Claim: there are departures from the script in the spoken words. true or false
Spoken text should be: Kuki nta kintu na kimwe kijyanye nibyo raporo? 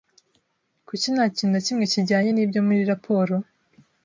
true